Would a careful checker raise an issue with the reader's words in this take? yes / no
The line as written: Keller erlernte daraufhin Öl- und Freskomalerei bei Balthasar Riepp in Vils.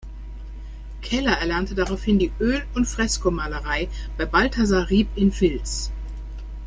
yes